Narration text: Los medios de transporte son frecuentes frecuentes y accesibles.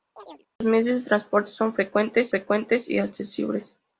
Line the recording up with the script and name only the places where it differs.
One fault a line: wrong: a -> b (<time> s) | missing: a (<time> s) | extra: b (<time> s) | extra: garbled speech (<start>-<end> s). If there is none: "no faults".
no faults